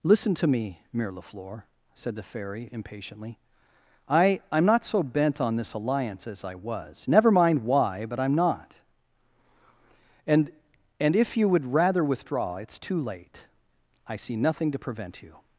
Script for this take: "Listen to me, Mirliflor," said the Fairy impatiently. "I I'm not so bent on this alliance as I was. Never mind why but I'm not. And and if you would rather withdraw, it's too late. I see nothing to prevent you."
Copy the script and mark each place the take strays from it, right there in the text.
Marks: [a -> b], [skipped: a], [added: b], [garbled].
"Listen to me, Mirliflor," said the Fairy impatiently. "I I'm not so bent on this alliance as I was. Never mind why but I'm not. And and if you would rather withdraw, it's too late. I see nothing to prevent you."